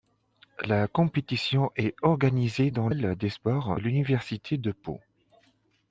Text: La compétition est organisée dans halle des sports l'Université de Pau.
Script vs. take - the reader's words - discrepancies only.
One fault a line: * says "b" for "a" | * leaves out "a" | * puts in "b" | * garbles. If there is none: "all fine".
all fine